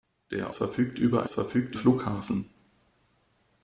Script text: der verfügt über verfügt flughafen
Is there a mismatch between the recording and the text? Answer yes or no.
no